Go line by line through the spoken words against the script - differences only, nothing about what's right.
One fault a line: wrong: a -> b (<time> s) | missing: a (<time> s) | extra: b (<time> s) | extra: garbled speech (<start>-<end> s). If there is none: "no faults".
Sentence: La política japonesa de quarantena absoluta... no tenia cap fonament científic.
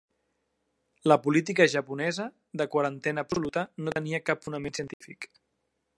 no faults